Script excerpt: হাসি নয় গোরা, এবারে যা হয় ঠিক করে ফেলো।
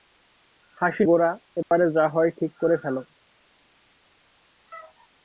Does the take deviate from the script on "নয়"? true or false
true